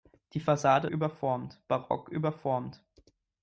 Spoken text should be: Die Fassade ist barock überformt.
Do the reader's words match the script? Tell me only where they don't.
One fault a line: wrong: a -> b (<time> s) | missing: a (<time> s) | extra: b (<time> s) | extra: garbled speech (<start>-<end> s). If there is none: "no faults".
wrong: ist -> überformt (0.9 s)